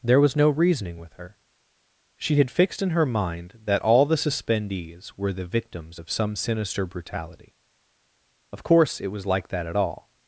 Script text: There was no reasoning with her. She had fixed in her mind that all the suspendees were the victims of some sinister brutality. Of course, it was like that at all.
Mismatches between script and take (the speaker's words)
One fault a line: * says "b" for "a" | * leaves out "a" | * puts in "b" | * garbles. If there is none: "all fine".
all fine